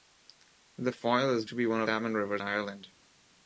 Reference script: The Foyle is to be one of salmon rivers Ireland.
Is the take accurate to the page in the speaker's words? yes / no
yes